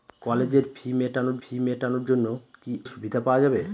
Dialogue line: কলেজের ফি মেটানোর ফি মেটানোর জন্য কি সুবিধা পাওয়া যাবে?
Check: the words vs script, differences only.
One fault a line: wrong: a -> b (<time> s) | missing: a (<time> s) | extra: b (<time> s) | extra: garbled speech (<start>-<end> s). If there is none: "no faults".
no faults